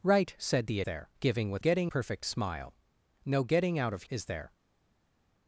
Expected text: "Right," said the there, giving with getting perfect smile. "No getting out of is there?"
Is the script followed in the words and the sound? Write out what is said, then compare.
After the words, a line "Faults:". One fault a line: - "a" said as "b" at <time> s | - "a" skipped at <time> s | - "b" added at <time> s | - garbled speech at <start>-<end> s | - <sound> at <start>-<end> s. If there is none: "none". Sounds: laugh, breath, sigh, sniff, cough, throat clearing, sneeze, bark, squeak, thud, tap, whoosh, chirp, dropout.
"Right," said the there, giving with getting perfect smile. "No getting out of is there?"
Faults:
none